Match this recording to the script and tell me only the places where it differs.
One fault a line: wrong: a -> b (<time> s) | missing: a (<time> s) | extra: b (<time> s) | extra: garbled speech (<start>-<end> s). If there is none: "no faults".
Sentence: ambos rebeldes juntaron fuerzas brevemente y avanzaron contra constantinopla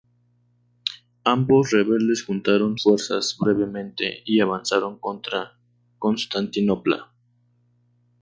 no faults